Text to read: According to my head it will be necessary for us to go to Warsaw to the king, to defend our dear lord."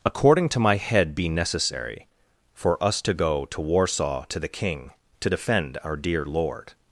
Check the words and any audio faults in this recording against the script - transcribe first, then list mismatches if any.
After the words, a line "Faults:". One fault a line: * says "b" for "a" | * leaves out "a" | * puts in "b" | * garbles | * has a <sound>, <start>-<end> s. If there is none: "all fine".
According to my head be necessary for us to go to Warsaw to the king, to defend our dear lord."
Faults:
* leaves out "it will"